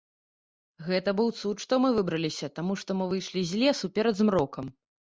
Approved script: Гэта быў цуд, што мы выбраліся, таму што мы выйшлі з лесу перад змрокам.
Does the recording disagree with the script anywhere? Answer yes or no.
no